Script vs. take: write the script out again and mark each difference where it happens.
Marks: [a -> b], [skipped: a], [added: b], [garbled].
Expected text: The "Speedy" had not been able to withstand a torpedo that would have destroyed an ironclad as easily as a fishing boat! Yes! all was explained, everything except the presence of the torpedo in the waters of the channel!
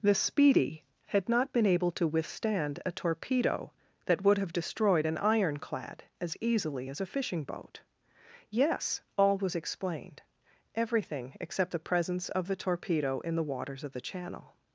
The "Speedy" had not been able to withstand a torpedo that would have destroyed an ironclad as easily as a fishing boat! Yes! all was explained, everything except the presence of the torpedo in the waters of the channel!